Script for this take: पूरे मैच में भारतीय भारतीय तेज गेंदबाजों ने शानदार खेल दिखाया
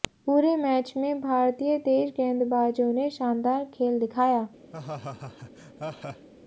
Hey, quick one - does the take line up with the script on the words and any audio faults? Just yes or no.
no